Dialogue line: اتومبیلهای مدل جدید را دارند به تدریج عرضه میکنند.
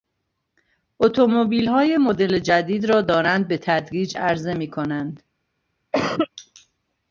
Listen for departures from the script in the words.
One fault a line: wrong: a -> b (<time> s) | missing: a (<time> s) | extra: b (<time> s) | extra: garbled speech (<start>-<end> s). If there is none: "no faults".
no faults